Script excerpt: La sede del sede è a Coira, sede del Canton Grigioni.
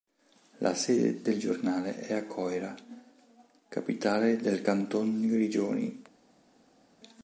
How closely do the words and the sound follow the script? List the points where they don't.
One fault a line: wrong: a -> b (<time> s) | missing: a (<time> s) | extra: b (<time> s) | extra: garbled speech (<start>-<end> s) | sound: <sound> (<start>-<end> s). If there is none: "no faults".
wrong: sede -> giornale (1.4 s)
wrong: sede -> capitale (3.7 s)